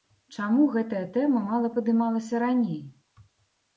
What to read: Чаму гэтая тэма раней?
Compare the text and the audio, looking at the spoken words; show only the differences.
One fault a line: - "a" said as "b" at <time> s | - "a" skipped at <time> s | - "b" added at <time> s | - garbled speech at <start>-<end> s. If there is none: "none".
- "мала падымалася" added at 1.5 s